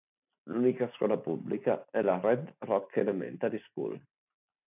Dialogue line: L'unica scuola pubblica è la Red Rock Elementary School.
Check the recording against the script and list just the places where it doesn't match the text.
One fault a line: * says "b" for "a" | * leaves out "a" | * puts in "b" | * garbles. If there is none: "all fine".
all fine